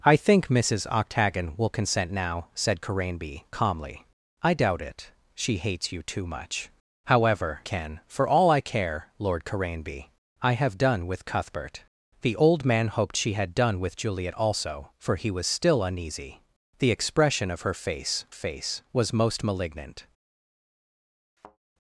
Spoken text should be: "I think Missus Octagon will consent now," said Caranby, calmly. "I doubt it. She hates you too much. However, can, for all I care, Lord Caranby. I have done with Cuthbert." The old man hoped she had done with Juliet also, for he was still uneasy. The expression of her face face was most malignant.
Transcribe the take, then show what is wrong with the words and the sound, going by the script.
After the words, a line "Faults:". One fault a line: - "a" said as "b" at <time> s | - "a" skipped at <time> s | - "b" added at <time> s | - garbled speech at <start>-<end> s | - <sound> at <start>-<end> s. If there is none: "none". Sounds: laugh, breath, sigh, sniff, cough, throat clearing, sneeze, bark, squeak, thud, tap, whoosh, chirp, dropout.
"I think Missus Octagon will consent now," said Caranby, calmly. "I doubt it. She hates you too much. However, can, for all I care, Lord Caranby. I have done with Cuthbert." The old man hoped she had done with Juliet also, for he was still uneasy. The expression of her face face was most malignant.
Faults:
- thud at 21.4-21.6 s